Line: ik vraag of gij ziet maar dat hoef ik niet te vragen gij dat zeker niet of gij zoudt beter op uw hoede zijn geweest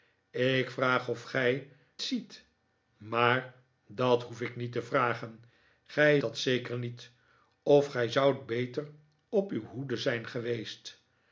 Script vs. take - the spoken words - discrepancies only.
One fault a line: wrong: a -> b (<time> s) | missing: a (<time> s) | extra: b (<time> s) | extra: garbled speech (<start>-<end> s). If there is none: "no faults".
no faults